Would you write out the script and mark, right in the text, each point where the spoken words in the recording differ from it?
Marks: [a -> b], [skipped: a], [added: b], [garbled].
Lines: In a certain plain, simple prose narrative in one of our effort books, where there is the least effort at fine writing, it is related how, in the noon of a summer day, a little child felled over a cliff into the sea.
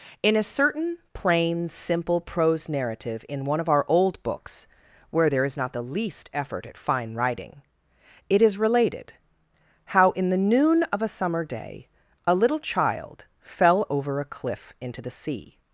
In a certain plain, simple prose narrative in one of our [effort -> old] books, where there is [added: not] the least effort at fine writing, it is related how, in the noon of a summer day, a little child [felled -> fell] over a cliff into the sea.